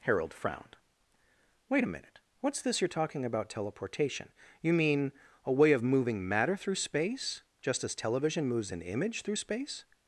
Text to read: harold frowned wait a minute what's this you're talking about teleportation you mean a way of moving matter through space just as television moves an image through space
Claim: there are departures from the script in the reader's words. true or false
false